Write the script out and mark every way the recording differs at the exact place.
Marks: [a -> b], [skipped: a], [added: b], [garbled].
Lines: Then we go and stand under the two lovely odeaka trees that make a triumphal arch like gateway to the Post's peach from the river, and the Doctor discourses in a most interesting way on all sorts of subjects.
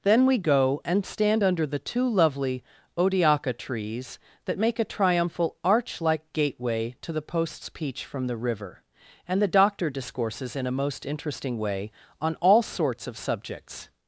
Then we go and stand under the two lovely odeaka trees that make a triumphal arch like gateway to the Post's peach from the river, and the Doctor discourses in a most interesting way on all sorts of subjects.